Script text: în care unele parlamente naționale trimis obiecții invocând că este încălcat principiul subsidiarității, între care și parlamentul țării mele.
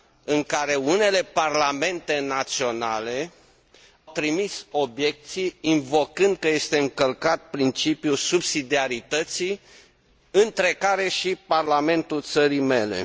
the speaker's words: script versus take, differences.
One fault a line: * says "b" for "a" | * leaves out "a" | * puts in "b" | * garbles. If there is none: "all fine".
all fine